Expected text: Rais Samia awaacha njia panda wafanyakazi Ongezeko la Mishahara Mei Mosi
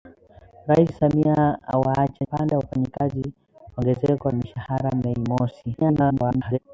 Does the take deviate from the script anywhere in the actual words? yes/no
yes